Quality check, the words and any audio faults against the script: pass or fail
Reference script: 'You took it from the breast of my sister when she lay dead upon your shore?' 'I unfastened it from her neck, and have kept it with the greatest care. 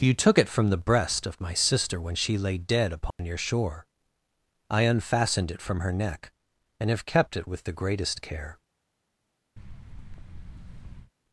fail